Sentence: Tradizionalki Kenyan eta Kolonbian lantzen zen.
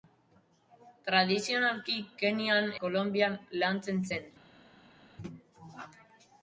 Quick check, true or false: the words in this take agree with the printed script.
false